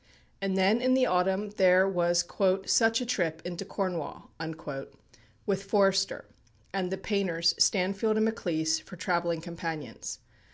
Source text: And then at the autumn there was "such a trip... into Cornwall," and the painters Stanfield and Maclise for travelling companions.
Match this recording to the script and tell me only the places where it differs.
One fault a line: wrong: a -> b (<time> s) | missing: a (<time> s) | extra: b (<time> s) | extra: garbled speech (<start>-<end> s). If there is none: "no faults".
wrong: at -> in (0.8 s)
extra: with Forster (5.5 s)